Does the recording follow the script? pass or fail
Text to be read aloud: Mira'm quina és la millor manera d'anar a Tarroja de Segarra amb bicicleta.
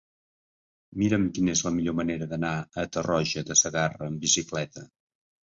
pass